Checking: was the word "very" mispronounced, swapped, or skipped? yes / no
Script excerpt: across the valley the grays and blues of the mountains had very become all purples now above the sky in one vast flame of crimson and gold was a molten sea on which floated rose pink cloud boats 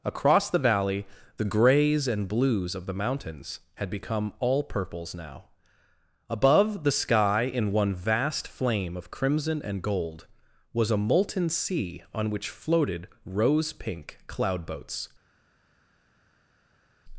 yes